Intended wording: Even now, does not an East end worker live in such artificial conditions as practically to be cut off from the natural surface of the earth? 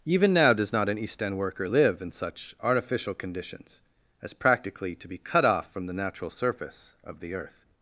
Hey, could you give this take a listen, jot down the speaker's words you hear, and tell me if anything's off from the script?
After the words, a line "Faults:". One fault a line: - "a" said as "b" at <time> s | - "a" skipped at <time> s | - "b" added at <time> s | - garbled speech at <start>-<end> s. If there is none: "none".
Even now, does not an East end worker live in such artificial conditions as practically to be cut off from the natural surface of the earth?
Faults:
none